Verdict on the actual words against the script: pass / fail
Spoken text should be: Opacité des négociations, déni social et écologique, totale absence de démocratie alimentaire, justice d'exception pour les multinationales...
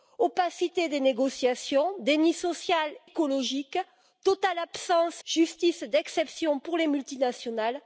fail